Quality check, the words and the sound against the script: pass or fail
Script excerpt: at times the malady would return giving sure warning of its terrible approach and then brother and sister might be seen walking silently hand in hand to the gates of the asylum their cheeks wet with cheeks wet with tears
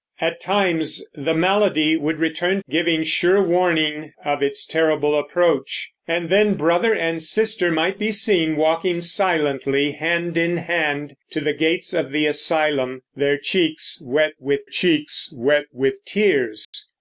fail